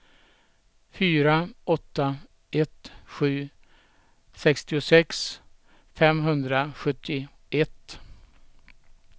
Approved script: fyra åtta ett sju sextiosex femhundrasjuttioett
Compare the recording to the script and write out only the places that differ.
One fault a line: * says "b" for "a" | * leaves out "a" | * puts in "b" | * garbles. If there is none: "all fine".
all fine